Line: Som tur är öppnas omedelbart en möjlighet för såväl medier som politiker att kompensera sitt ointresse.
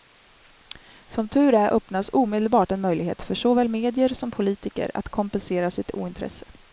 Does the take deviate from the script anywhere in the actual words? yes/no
no